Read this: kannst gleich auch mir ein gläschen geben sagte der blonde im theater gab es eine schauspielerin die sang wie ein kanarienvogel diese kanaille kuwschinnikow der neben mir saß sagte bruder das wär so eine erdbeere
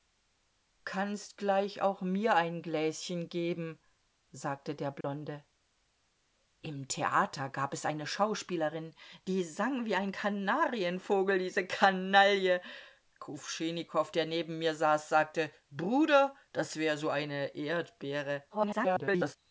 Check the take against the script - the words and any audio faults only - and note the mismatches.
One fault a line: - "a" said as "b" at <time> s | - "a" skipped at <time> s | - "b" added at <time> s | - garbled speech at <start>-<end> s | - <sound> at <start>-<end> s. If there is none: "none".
- dropout at 5.0-5.0 s
- garbled speech at 18.5-19.4 s